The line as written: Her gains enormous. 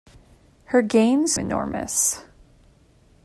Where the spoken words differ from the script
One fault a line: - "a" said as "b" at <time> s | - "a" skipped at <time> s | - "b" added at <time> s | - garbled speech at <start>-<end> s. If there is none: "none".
none